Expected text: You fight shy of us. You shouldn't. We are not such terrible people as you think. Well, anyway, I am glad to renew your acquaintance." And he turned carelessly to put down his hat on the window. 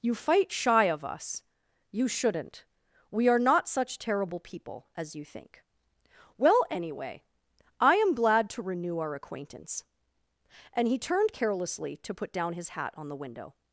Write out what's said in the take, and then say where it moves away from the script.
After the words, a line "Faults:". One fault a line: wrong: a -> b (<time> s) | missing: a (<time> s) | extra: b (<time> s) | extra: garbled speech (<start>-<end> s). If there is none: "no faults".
You fight shy of us. You shouldn't. We are not such terrible people as you think. Well, anyway, I am glad to renew our acquaintance." And he turned carelessly to put down his hat on the window.
Faults:
wrong: your -> our (9.0 s)